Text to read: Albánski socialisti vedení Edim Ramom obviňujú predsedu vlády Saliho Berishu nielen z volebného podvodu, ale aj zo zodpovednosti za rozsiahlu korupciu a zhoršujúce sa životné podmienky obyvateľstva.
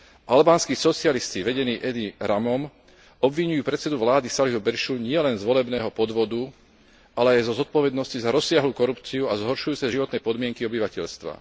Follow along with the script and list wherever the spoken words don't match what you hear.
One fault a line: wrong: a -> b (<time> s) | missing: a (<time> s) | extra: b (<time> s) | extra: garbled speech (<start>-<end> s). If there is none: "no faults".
no faults